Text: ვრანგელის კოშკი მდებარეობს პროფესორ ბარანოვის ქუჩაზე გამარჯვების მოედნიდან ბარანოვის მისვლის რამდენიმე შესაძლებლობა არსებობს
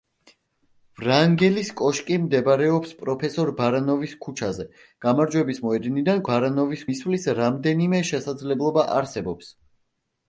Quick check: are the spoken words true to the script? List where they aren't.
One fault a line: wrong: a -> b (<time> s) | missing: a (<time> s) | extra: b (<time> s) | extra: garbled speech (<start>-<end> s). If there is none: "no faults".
no faults